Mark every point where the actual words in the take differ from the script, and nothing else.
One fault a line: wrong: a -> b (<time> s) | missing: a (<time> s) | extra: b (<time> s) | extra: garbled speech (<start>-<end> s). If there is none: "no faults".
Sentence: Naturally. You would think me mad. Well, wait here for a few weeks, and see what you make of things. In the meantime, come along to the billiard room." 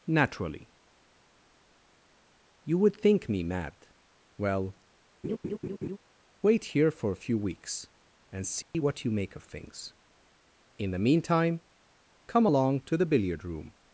no faults